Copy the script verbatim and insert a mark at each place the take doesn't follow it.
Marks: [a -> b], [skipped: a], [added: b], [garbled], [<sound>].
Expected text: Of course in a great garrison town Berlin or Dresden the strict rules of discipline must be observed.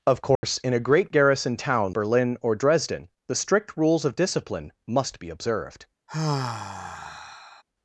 Of course [dropout] in a great garrison town Berlin or Dresden the strict rules of discipline must be observed. [sigh]